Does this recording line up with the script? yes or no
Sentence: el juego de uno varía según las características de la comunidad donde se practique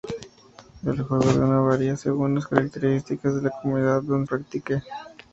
no